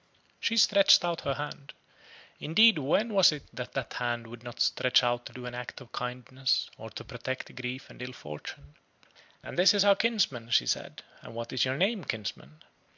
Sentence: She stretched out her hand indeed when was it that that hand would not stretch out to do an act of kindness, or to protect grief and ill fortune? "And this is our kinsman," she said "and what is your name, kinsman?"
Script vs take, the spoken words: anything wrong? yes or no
no